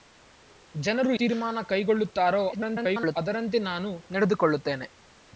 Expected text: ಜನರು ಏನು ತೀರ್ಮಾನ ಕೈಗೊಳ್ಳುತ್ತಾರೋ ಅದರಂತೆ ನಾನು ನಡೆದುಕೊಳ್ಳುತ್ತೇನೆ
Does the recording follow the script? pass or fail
fail